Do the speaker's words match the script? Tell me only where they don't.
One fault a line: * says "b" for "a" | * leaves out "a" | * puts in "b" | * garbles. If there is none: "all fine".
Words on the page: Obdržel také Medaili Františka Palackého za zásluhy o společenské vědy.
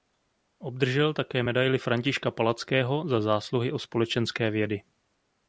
all fine